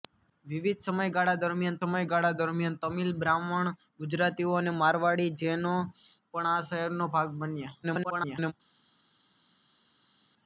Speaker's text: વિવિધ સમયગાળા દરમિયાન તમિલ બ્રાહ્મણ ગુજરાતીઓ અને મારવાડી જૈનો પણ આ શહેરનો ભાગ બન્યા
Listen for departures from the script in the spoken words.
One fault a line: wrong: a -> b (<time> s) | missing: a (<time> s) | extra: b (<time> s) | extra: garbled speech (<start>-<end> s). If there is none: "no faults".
extra: સમયગાળા દરમિયાન (1.8 s)
extra: garbled speech (7.8-8.5 s)